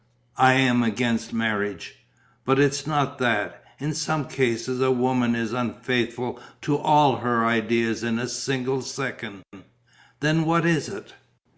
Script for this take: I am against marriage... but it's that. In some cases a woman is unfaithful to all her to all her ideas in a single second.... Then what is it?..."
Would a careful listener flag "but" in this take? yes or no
no